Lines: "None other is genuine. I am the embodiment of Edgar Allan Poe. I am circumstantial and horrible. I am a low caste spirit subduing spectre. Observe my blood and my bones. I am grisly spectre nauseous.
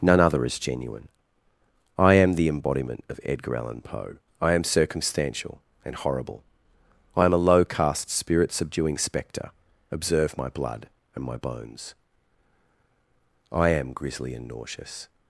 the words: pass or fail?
fail